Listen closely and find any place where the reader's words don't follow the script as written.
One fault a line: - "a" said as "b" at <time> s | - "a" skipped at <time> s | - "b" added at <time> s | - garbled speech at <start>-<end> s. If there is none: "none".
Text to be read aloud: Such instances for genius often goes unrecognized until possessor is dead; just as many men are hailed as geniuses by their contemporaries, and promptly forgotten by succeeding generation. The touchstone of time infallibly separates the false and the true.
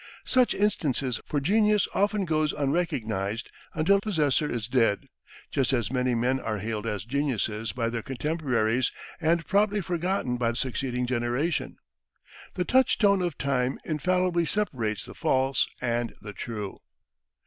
none